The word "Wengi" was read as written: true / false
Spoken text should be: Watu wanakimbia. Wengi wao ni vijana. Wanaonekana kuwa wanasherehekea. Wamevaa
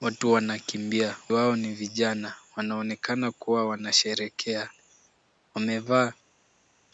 false